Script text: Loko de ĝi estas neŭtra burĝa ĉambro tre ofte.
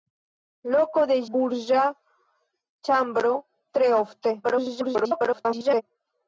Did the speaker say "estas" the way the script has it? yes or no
no